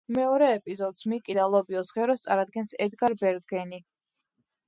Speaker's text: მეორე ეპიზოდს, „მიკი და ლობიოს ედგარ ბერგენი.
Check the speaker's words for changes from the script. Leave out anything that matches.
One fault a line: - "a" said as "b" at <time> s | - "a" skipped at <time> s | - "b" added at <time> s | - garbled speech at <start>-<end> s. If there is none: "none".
- "ღეროს წარადგენს" added at 2.0 s